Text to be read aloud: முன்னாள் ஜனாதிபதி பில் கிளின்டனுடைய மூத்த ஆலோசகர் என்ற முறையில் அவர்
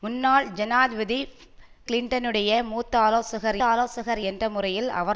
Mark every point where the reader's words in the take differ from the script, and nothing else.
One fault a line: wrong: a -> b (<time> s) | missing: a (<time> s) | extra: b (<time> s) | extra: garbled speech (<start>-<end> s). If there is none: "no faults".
missing: பில் (1.2 s)
extra: ஆலோசகர் (3.6 s)